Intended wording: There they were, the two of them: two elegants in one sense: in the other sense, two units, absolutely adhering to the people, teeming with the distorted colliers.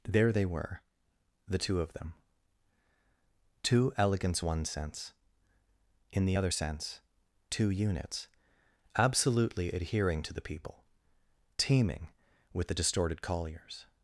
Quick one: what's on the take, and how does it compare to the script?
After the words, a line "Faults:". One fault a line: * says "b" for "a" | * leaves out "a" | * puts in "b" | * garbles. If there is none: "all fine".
There they were, the two of them: two elegants one sense: in the other sense, two units, absolutely adhering to the people, teeming with the distorted colliers.
Faults:
* leaves out "in"